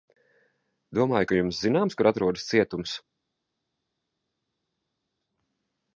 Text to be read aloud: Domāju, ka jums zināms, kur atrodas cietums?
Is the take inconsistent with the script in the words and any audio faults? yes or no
no